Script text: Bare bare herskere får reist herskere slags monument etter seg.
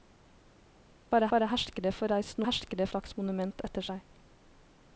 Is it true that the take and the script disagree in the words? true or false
false